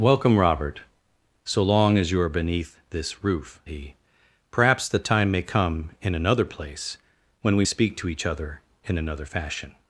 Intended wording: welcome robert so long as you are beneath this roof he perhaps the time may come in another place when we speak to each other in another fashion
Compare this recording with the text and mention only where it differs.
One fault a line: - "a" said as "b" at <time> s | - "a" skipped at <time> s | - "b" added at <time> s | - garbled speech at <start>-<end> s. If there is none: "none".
none